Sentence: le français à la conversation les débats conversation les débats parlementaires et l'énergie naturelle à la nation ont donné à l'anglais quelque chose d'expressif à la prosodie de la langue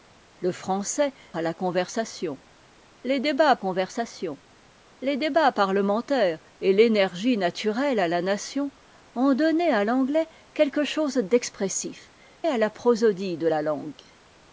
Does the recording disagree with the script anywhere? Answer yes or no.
no